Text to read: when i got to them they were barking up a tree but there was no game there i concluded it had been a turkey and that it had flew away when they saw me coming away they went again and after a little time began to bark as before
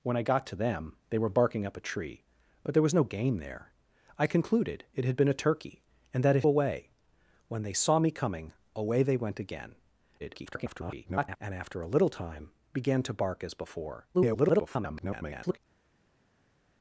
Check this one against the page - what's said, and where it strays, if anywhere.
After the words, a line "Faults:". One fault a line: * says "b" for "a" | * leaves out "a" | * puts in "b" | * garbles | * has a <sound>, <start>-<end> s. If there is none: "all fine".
when i got to them they were barking up a tree but there was no game there i concluded it had been a turkey and that it away when they saw me coming away they went again [garbled] and after a little time began to bark as before [garbled]
Faults:
* leaves out "had flew"
* garbles
* garbles